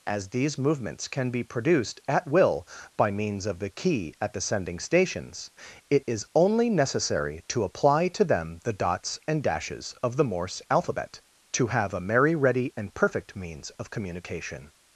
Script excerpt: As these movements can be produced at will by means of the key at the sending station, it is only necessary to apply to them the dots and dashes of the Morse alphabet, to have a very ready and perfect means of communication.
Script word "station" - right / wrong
wrong